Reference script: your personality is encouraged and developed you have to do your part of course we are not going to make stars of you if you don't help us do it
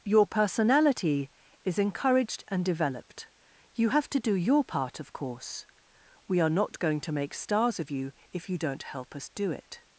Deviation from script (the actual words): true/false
false